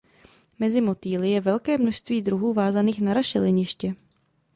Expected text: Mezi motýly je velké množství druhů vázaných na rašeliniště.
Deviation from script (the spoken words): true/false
false